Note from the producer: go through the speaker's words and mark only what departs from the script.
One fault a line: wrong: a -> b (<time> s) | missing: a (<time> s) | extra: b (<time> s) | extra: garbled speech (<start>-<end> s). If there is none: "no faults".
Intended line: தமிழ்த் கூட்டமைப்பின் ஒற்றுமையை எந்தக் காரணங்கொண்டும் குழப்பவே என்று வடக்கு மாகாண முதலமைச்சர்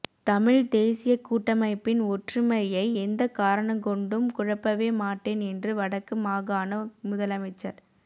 extra: தேசியக் (0.7 s)
extra: மாட்டேன் (5.0 s)